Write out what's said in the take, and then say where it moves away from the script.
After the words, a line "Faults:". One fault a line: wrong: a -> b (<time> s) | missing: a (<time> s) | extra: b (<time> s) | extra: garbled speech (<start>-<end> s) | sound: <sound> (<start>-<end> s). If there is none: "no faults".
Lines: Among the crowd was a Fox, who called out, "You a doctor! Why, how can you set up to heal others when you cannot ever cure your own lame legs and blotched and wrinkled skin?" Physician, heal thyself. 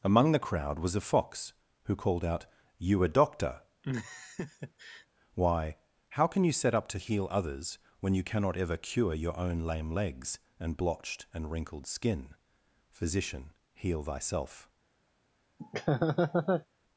Among the crowd was a Fox, who called out, "You a doctor! Why, how can you set up to heal others when you cannot ever cure your own lame legs and blotched and wrinkled skin?" Physician, heal thyself.
Faults:
sound: laugh (3.8-5.1 s)
sound: laugh (15.6-16.7 s)